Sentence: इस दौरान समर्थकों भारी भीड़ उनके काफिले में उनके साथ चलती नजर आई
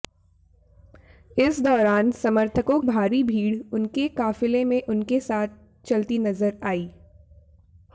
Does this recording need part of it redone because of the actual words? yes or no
no